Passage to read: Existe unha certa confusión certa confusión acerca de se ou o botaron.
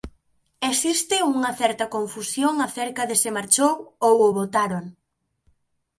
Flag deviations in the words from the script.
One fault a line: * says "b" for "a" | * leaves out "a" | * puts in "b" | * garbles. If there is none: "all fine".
* leaves out "certa confusión"
* puts in "marchou"